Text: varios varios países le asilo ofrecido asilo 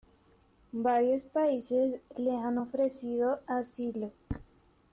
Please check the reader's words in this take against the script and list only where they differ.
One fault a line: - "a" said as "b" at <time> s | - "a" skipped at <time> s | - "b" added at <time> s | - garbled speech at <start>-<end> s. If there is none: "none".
- "varios" skipped at 1.2 s
- "asilo" said as "han" at 2.4 s